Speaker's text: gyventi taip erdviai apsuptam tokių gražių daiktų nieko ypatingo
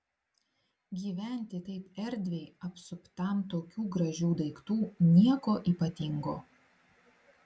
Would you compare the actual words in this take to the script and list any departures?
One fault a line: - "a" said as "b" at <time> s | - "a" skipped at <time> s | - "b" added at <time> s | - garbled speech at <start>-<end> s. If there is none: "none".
none